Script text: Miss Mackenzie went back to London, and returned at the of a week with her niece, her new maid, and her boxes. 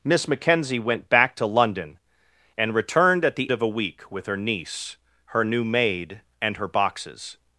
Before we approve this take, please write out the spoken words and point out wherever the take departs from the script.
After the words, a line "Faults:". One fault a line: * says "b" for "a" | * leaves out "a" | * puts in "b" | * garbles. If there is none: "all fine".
Miss Mackenzie went back to London, and returned at the of a week with her niece, her new maid, and her boxes.
Faults:
all fine